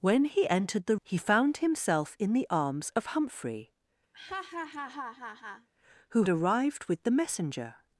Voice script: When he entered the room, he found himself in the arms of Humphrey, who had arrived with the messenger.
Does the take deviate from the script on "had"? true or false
true